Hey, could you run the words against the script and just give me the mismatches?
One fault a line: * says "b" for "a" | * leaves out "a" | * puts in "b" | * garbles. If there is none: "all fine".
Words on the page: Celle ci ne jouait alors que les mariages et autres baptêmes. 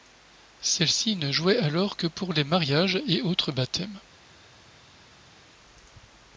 * puts in "pour"